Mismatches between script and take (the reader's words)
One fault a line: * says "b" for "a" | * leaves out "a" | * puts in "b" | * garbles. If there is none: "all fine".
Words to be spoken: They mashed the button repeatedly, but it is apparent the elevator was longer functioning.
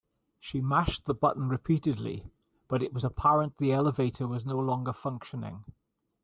* says "She" for "They"
* says "was" for "is"
* puts in "no"